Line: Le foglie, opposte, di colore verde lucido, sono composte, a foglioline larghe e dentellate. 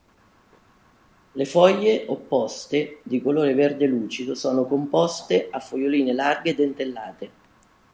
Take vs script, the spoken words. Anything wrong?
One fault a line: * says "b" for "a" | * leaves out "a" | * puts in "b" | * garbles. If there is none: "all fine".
all fine